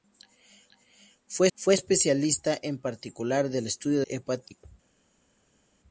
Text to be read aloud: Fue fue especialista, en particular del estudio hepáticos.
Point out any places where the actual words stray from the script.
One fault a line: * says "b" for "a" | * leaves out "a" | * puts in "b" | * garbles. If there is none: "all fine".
all fine